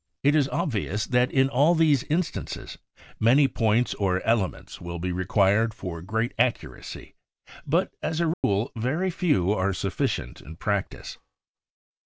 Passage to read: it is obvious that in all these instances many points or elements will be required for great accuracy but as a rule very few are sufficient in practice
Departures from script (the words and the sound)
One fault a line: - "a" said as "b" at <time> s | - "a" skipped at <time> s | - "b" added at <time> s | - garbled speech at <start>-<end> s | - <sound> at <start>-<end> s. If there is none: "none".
- dropout at 8.3-8.4 s